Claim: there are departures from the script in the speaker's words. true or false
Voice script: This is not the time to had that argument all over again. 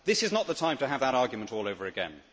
true